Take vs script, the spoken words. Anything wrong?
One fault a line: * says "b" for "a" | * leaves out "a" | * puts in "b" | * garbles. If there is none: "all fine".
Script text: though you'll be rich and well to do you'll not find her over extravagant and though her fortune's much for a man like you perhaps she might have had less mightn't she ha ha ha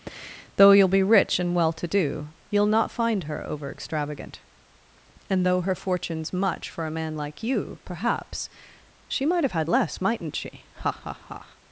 all fine